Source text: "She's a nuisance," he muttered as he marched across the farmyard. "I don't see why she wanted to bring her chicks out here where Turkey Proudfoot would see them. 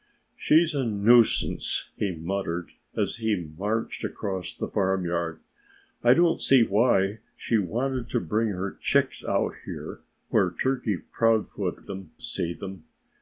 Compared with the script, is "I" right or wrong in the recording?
right